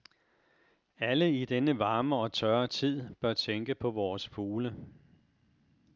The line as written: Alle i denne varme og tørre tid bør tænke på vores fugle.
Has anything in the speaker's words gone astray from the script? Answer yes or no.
no